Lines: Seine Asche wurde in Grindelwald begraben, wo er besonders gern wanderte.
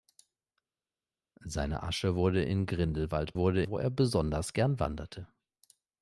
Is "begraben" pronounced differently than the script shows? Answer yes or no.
yes